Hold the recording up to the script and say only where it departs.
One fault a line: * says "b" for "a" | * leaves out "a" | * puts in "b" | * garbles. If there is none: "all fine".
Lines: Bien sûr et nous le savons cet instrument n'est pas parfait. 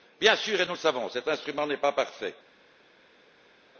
all fine